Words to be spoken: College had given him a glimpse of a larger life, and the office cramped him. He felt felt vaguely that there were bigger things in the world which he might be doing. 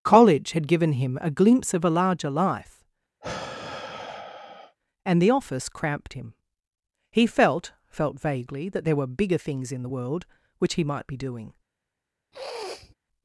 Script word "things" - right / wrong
right